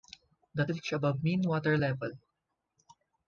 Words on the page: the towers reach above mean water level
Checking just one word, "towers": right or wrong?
wrong